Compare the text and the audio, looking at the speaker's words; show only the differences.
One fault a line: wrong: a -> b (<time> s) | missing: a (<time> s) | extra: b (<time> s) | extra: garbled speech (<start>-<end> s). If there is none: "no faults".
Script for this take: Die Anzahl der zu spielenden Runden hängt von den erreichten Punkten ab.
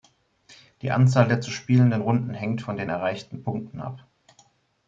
no faults